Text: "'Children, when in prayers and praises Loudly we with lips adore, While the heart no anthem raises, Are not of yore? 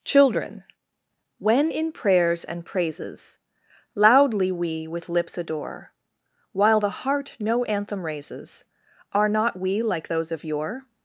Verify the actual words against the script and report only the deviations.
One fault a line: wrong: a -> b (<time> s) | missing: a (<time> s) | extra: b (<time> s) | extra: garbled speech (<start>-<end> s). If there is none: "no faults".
extra: we like those (9.6 s)